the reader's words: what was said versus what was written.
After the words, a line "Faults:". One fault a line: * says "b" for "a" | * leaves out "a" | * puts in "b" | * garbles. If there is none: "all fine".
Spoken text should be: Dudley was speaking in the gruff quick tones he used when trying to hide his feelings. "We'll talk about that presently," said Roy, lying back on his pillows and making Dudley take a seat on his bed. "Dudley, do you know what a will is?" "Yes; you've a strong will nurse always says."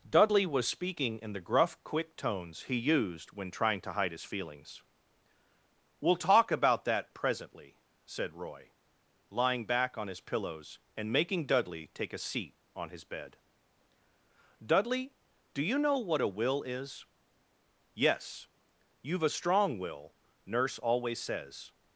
Dudley was speaking in the gruff quick tones he used when trying to hide his feelings. "We'll talk about that presently," said Roy, lying back on his pillows and making Dudley take a seat on his bed. "Dudley, do you know what a will is?" "Yes; you've a strong will nurse always says."
Faults:
all fine